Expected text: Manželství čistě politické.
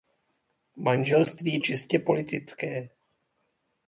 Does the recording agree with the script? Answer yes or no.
yes